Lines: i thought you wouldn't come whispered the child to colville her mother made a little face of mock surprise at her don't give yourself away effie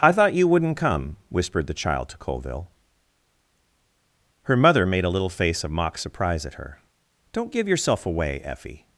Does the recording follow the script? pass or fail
pass